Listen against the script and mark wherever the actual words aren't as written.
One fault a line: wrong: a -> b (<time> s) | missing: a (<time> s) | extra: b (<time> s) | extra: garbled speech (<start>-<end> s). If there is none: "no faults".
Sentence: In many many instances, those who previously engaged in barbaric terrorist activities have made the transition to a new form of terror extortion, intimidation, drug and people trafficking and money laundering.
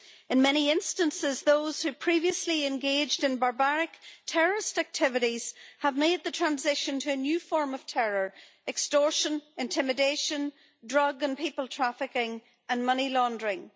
missing: many (0.7 s)